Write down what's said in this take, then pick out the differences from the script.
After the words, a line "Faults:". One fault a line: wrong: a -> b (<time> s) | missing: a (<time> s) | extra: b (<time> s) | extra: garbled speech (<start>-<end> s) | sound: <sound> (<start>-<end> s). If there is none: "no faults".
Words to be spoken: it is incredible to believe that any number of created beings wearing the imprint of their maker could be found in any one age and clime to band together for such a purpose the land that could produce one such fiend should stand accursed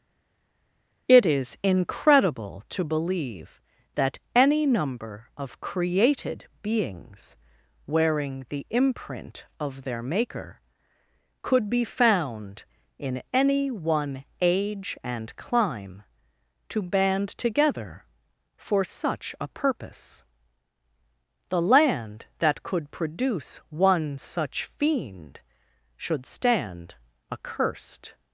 it is incredible to believe that any number of created beings wearing the imprint of their maker could be found in any one age and clime to band together for such a purpose the land that could produce one such fiend should stand accursed
Faults:
no faults